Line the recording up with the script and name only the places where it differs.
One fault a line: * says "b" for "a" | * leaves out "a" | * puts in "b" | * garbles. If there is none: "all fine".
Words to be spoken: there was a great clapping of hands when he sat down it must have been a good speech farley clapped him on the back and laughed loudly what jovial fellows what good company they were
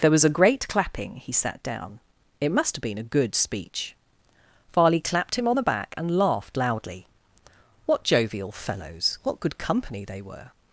* leaves out "of hands when"